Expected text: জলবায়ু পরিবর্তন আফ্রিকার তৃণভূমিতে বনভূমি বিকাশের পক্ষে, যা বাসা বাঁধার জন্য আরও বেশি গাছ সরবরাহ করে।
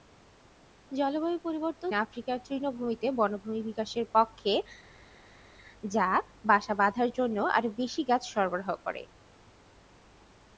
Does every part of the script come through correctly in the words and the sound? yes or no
yes